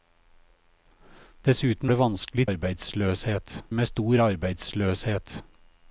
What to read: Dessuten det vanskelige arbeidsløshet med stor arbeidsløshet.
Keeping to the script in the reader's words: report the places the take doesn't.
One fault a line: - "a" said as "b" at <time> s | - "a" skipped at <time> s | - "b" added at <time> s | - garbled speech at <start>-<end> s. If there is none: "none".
none